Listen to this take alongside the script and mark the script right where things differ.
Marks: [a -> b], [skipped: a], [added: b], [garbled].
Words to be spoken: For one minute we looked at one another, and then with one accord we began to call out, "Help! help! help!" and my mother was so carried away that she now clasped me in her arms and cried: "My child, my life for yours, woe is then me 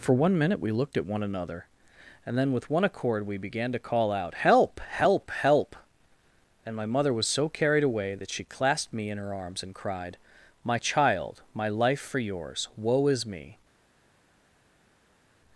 For one minute we looked at one another, and then with one accord we began to call out, "Help! help! help!" and my mother was so carried away that she [skipped: now] clasped me in her arms and cried: "My child, my life for yours, woe is [skipped: then] me